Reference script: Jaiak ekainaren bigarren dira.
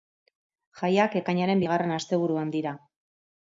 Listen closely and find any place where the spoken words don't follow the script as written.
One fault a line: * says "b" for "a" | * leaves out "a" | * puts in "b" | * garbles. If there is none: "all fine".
* puts in "asteburuan"